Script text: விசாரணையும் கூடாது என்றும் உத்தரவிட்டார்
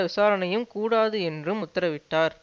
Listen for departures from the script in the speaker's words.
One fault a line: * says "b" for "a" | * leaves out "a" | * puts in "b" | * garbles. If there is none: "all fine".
all fine